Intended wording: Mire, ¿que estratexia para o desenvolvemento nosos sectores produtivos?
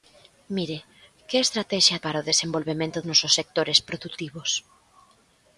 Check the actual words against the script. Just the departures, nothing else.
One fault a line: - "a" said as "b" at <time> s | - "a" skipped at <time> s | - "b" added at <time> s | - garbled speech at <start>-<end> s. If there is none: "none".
none